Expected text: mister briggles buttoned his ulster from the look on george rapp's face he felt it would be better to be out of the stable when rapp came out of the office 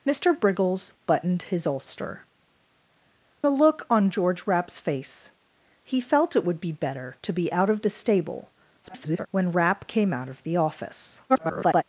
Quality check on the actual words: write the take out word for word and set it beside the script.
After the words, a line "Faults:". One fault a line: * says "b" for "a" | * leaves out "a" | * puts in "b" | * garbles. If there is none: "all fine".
mister briggles buttoned his ulster the look on george rapp's face he felt it would be better to be out of the stable [garbled] when rapp came out of the office [garbled]
Faults:
* leaves out "from"
* garbles
* garbles